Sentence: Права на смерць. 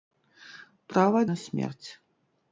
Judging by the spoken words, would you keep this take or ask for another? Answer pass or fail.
pass